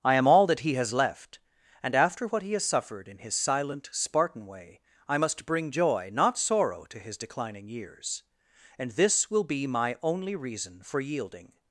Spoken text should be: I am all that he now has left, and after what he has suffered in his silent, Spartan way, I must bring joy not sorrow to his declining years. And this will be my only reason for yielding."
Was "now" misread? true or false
true